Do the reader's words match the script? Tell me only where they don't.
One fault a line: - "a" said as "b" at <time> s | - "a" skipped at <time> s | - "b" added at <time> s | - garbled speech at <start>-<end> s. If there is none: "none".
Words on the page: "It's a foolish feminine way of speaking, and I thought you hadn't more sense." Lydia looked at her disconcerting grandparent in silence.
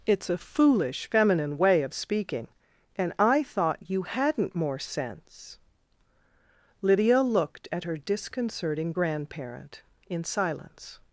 none